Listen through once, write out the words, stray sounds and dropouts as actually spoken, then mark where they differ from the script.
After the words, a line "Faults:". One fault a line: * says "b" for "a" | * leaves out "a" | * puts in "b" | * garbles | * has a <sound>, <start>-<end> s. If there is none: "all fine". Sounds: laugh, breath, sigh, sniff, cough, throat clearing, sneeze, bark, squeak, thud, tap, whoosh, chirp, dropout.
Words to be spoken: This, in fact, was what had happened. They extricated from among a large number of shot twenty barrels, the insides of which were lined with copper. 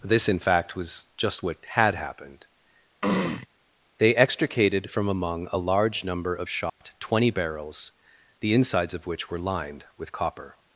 This, in fact, was just what had happened. They extricated from among a large number of shot twenty barrels, the insides of which were lined with copper.
Faults:
* puts in "just"
* has a throat clearing, 3.0-3.5 s
* has a dropout, 6.7-6.8 s